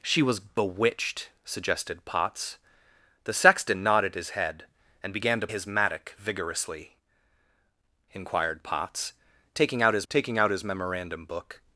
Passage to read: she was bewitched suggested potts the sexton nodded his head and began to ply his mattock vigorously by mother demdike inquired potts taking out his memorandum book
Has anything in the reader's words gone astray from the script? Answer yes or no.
yes